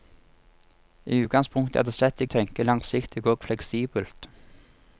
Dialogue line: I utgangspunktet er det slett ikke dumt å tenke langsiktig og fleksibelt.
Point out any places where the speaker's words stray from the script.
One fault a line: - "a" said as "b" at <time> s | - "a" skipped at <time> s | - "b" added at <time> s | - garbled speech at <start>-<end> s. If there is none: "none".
- "ikke dumt" skipped at 2.2 s